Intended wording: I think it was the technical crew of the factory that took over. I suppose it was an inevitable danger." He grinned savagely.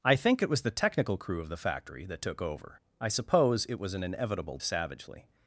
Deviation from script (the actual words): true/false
true